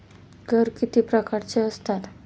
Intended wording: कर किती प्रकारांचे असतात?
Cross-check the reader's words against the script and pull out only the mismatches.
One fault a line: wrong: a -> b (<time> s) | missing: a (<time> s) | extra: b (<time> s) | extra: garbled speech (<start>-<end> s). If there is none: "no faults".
no faults